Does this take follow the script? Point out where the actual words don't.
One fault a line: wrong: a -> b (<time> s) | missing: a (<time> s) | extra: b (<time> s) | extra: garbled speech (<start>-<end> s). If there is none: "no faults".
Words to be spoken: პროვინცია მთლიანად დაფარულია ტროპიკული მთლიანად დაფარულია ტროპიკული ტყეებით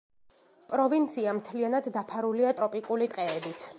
missing: მთლიანად დაფარულია ტროპიკული (3.1 s)